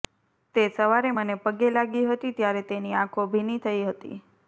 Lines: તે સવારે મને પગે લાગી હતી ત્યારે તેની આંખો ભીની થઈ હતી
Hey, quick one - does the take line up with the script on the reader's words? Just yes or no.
yes